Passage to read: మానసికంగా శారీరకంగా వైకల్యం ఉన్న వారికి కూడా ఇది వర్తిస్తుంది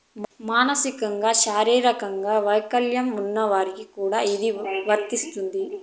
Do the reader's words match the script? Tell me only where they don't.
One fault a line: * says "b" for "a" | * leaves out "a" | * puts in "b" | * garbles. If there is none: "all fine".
all fine